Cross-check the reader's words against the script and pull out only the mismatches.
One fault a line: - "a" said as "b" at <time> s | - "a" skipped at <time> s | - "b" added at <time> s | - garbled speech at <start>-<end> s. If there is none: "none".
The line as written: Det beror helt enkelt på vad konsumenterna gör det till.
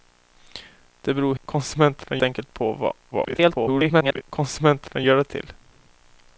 - "helt" said as "konsumenterna" at 1.4 s
- garbled speech at 3.1-4.2 s